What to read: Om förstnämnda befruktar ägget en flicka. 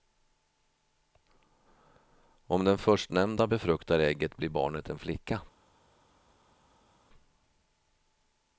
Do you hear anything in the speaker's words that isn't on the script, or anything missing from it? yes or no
yes